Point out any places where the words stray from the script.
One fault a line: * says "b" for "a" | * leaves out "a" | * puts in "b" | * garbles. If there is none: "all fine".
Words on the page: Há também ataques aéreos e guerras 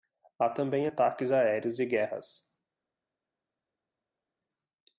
all fine